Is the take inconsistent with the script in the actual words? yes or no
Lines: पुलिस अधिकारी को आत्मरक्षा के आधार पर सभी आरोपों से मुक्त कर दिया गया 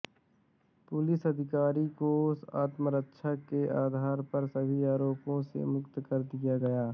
no